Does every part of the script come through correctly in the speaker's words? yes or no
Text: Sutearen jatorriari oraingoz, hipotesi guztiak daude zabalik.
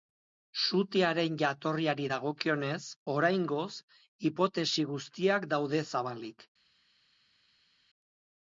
no